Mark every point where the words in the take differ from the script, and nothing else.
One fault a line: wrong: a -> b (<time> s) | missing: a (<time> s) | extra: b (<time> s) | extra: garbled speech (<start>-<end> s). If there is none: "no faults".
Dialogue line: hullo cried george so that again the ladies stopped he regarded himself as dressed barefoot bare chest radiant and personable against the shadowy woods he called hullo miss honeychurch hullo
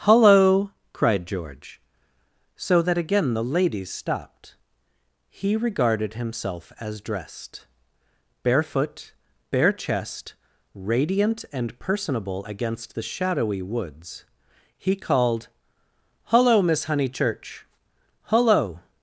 no faults